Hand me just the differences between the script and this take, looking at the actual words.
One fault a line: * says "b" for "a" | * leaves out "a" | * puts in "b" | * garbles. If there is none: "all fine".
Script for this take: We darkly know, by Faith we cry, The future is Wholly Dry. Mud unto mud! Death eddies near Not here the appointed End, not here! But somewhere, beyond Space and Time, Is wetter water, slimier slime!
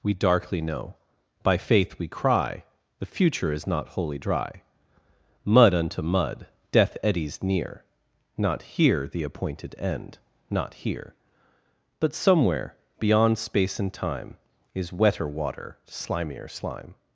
* puts in "not"